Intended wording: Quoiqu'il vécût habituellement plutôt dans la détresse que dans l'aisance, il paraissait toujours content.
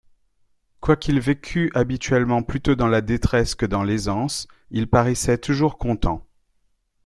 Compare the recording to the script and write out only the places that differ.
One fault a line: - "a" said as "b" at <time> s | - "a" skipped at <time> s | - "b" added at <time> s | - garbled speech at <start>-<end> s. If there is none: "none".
none